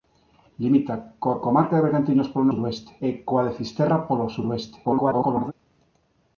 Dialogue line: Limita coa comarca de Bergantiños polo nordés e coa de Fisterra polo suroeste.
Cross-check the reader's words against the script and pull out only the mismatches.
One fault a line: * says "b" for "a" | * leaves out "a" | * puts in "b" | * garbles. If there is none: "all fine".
* says "suroeste" for "nordés"
* garbles